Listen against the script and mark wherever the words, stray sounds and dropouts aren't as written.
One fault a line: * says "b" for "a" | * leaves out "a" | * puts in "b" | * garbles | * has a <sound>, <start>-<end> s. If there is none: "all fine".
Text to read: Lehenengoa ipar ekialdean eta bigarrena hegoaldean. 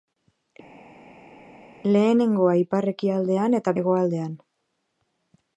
* leaves out "bigarrena"